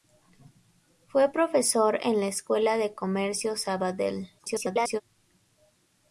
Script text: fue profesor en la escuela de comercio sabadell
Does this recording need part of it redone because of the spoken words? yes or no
yes